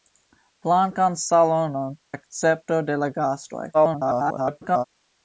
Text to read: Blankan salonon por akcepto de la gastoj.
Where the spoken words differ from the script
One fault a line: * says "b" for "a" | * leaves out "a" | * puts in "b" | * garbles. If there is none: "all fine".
* leaves out "por"
* garbles